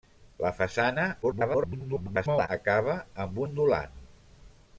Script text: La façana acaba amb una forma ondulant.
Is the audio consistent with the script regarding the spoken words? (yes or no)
no